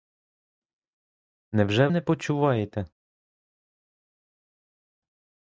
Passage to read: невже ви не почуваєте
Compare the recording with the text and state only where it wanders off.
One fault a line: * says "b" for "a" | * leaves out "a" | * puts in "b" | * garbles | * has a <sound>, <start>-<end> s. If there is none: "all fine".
* leaves out "ви"